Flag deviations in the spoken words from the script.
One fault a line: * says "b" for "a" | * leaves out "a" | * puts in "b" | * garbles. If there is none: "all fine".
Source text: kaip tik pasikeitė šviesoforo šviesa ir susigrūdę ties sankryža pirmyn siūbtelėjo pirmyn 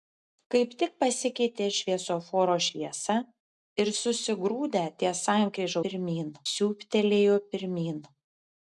all fine